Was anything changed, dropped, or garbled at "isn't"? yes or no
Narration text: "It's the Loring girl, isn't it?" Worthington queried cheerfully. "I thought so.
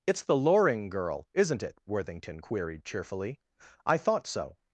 no